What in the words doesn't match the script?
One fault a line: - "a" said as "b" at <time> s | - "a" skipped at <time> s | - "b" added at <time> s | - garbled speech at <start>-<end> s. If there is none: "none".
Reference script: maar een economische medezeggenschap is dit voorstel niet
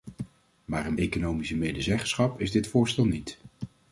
none